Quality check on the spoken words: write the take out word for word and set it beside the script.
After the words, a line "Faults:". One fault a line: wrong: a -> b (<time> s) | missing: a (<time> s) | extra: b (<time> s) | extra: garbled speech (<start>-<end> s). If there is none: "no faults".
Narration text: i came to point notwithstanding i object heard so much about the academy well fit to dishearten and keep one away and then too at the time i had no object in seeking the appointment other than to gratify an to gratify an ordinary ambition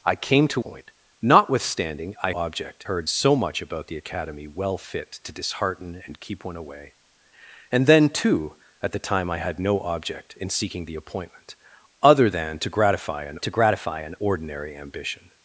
i came to point notwithstanding i object heard so much about the academy well fit to dishearten and keep one away and then too at the time i had no object in seeking the appointment other than to gratify an to gratify an ordinary ambition
Faults:
no faults